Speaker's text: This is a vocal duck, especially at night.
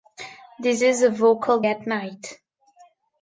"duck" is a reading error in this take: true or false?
true